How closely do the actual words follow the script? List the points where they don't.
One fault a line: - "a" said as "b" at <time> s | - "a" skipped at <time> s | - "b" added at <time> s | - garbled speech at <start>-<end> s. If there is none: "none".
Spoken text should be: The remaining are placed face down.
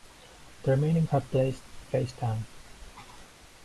none